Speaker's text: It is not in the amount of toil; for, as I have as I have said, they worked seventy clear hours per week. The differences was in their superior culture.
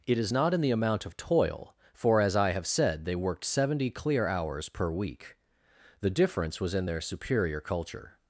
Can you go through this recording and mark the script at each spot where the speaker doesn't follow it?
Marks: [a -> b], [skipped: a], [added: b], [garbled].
It is not in the amount of toil; for, as I have [skipped: as I have] said, they worked seventy clear hours per week. The [differences -> difference] was in their superior culture.